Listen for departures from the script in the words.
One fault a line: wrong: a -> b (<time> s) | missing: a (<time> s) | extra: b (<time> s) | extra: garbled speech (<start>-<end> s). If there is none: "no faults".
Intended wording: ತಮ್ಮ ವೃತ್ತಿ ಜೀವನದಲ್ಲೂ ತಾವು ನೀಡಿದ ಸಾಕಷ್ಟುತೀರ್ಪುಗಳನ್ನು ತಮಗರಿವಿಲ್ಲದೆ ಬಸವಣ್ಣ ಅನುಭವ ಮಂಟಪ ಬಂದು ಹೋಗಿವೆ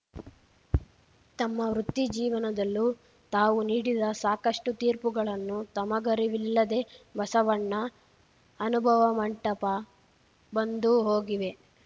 no faults